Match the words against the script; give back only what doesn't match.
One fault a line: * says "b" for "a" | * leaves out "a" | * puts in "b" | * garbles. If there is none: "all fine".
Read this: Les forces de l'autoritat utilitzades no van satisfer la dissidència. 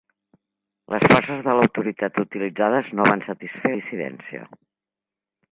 * leaves out "la"